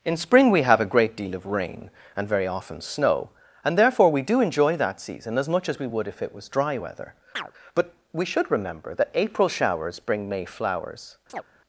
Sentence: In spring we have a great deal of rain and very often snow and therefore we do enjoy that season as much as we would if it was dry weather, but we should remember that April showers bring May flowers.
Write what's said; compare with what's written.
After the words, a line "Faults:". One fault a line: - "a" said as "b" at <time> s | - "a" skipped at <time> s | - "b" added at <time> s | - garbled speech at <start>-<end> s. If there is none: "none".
In spring we have a great deal of rain and very often snow and therefore we do enjoy that season as much as we would if it was dry weather, but we should remember that April showers bring May flowers.
Faults:
none